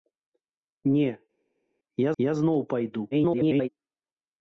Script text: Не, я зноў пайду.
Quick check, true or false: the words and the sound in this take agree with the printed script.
false